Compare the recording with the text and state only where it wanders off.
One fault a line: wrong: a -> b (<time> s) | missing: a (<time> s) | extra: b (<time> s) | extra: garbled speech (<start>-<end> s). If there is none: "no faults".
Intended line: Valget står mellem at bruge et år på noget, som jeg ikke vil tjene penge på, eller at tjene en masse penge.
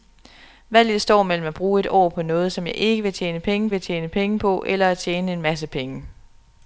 extra: vil tjene penge (3.7 s)